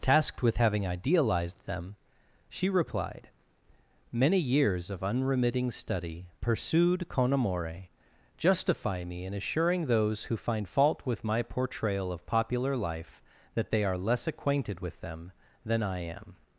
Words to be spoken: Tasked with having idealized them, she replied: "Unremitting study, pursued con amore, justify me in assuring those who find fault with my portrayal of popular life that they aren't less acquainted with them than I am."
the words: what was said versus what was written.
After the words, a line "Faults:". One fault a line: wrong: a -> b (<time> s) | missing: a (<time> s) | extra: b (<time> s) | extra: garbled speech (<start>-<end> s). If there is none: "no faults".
Tasked with having idealized them, she replied: "Many years of unremitting study, pursued con amore, justify me in assuring those who find fault with my portrayal of popular life that they are less acquainted with them than I am."
Faults:
extra: Many years of (4.1 s)
wrong: aren't -> are (13.8 s)